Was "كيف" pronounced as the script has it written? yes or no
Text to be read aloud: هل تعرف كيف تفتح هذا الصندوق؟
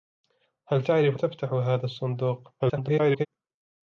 no